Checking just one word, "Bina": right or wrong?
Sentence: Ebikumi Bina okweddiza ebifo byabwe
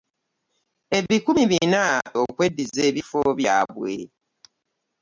right